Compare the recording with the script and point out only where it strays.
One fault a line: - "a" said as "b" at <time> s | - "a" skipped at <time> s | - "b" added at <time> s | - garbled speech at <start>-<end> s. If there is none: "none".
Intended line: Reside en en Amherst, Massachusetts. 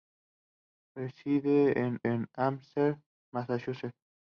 none